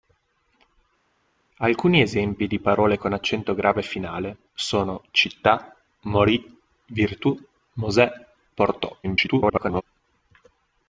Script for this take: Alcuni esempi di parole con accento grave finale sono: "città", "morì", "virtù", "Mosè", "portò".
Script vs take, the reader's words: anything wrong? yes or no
yes